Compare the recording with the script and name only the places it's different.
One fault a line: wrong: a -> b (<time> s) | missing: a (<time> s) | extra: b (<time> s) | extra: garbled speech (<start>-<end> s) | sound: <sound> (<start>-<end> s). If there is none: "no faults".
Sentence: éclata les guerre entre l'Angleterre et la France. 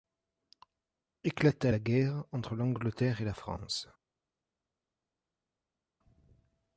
wrong: les -> la (1.7 s)